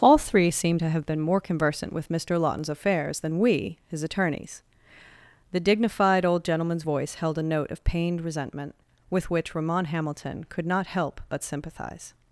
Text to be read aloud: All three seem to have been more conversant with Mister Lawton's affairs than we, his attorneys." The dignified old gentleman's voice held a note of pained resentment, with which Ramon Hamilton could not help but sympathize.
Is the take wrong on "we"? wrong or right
right